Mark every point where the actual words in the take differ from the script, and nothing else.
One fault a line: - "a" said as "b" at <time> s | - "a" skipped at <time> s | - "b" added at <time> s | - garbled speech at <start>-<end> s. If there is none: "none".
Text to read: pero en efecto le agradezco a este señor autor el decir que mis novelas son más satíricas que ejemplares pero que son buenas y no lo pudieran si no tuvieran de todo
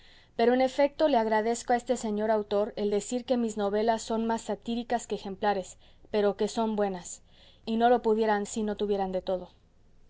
none